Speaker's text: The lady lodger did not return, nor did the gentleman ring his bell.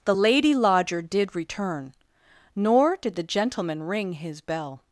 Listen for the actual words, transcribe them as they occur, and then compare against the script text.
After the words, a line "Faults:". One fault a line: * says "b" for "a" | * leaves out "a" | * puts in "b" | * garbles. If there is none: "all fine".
The lady lodger did return, nor did the gentleman ring his bell.
Faults:
* leaves out "not"